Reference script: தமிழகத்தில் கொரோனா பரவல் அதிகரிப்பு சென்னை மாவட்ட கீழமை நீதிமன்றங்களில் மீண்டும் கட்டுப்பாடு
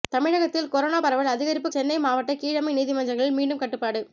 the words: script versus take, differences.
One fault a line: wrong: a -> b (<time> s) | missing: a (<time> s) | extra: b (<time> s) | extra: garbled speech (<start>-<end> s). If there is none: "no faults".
no faults